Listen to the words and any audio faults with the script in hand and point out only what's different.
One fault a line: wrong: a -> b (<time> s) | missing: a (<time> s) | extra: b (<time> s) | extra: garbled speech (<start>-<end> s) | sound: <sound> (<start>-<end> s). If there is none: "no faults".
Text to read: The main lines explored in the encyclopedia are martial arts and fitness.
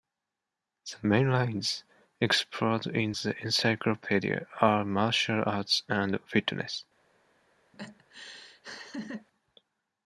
sound: laugh (7.7-9.3 s)